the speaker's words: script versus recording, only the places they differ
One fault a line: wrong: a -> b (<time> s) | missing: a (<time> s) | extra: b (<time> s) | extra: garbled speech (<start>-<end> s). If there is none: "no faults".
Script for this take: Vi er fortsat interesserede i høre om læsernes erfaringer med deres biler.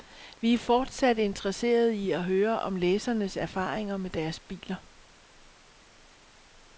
extra: at (2.1 s)